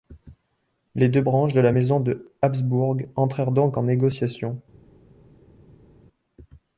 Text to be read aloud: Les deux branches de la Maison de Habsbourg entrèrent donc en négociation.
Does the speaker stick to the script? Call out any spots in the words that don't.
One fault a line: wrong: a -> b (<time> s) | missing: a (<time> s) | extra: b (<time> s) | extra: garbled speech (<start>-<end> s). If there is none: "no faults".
no faults